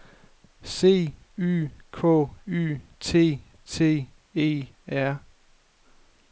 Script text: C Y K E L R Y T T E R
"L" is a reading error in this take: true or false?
true